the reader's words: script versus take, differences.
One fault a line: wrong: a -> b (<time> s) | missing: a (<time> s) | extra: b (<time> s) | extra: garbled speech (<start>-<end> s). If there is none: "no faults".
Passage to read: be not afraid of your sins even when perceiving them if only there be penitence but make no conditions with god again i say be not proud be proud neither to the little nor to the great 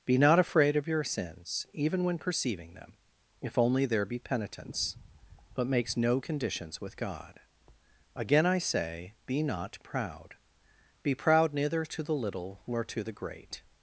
wrong: make -> makes (5.7 s)